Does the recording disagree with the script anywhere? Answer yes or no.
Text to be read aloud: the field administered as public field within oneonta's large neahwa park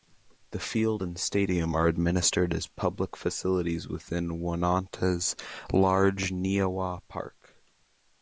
yes